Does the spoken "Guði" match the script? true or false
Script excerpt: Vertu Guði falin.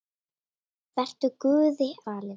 true